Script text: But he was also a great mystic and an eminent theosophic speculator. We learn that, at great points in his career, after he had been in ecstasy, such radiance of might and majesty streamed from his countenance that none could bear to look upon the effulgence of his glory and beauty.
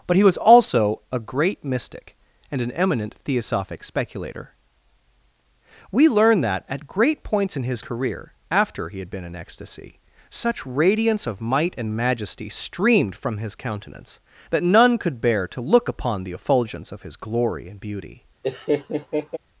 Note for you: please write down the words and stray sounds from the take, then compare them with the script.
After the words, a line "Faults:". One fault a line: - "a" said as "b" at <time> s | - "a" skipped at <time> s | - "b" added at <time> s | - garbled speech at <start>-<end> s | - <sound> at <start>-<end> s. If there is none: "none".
But he was also a great mystic and an eminent theosophic speculator. We learn that, at great points in his career, after he had been in ecstasy, such radiance of might and majesty streamed from his countenance that none could bear to look upon the effulgence of his glory and beauty.
Faults:
- laugh at 18.4-19.4 s